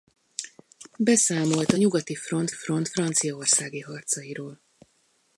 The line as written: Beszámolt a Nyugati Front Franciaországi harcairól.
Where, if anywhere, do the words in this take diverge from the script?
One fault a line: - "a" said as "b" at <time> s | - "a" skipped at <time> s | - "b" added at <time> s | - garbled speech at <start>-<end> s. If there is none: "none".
- "Front" added at 2.5 s